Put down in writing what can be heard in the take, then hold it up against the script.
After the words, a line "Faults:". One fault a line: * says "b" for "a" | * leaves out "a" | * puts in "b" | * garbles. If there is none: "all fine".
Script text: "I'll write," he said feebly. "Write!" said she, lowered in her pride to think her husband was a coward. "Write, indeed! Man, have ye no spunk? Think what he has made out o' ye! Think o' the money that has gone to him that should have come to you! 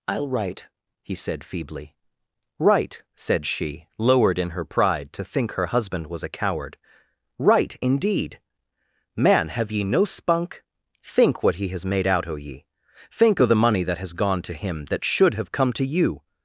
"I'll write," he said feebly. "Write!" said she, lowered in her pride to think her husband was a coward. "Write, indeed! Man, have ye no spunk? Think what he has made out o' ye! Think o' the money that has gone to him that should have come to you!
Faults:
all fine